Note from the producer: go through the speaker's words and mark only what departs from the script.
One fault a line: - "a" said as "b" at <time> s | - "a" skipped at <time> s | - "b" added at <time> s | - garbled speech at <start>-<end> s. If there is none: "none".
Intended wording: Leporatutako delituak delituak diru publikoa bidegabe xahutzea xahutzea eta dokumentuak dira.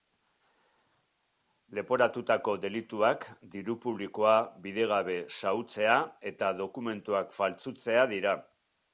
- "delituak" skipped at 3.3 s
- "xahutzea" skipped at 6.0 s
- "faltsutzea" added at 7.4 s